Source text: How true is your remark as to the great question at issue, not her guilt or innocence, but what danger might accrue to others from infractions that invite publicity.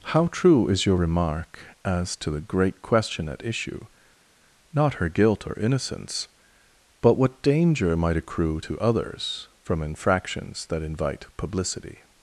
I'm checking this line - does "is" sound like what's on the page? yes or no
yes